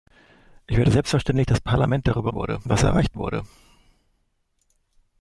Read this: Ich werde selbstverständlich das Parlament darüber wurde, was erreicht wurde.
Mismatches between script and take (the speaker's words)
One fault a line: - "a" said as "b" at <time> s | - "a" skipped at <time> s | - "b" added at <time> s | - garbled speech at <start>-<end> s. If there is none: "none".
none